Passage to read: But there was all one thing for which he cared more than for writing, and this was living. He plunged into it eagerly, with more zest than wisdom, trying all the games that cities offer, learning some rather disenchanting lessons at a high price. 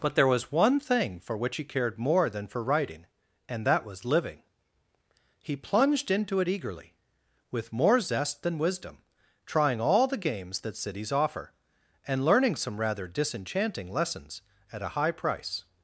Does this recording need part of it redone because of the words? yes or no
yes